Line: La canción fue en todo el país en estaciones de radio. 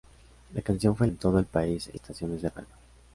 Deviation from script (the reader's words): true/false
false